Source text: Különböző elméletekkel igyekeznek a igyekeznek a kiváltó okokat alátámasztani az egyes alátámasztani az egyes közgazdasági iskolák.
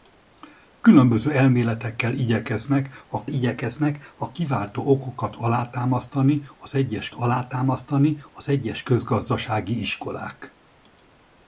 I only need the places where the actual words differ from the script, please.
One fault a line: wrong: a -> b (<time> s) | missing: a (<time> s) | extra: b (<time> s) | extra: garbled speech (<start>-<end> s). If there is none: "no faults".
no faults